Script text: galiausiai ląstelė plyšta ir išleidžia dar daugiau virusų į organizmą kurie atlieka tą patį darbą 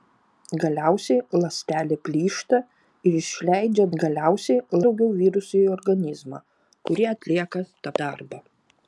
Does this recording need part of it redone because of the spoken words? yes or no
yes